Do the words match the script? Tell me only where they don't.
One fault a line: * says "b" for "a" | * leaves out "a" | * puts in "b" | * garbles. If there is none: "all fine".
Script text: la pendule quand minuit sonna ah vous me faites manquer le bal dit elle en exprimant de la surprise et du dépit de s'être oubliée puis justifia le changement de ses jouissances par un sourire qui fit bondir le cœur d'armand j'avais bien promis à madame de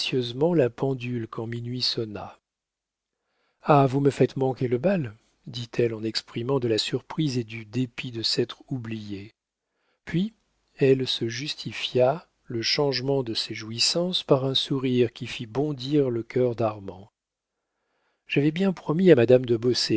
* puts in "elle se"